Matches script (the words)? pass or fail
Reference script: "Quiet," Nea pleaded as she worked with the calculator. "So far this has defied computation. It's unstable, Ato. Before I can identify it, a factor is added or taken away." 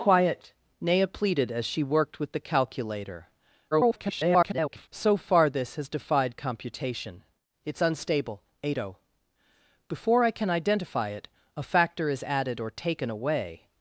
fail